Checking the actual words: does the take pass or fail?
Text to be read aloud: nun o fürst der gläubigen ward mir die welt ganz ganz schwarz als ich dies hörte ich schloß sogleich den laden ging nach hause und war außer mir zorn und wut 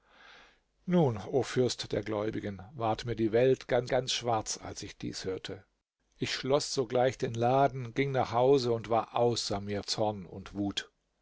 pass